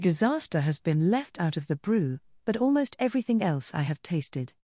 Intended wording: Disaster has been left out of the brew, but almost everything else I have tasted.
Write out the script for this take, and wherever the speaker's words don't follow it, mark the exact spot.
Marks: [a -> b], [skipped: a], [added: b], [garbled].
Disaster has been left out of the brew, but almost everything else I have tasted.